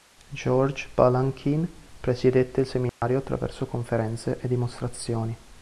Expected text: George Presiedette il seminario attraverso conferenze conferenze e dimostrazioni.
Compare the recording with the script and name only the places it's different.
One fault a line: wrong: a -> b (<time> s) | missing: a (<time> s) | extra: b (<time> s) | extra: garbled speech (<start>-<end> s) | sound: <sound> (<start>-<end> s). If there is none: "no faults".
extra: Balanchine (0.9 s)
sound: dropout (2.9-3.0 s)
missing: conferenze (4.4 s)